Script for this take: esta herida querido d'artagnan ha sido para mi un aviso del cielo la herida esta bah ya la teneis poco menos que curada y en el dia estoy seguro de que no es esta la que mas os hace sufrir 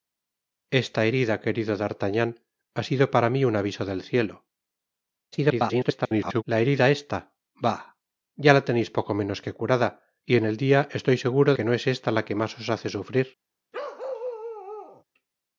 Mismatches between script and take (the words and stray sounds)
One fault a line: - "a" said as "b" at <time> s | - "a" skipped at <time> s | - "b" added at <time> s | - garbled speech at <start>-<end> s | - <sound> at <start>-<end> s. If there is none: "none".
- garbled speech at 5.3-6.4 s
- "de" skipped at 11.5 s
- bark at 13.7-15.0 s